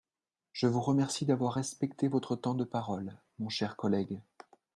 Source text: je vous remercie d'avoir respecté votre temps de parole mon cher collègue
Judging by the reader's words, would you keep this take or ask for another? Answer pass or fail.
pass